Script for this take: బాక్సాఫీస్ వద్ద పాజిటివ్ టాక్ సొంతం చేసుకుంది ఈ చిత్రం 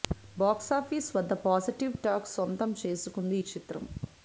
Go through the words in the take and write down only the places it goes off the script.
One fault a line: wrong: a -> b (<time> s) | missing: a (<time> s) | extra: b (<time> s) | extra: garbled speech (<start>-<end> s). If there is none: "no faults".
no faults